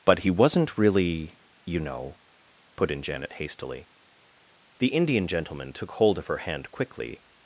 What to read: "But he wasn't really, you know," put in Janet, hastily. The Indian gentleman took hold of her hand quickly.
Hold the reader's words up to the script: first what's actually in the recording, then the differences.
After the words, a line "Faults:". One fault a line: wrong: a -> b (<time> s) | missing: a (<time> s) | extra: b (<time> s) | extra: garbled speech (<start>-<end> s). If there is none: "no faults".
"But he wasn't really, you know," put in Janet, hastily. The Indian gentleman took hold of her hand quickly.
Faults:
no faults